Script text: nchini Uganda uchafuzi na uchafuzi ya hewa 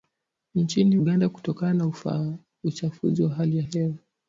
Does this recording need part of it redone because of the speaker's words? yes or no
yes